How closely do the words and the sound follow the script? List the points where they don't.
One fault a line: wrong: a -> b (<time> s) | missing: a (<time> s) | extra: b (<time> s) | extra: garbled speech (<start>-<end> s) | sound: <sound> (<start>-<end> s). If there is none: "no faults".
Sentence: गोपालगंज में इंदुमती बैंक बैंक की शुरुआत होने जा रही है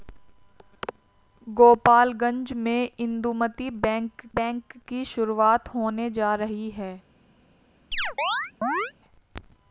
sound: chirp (7.9-8.9 s)